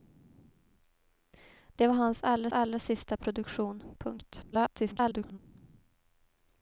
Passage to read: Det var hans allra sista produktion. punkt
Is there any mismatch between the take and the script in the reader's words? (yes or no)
yes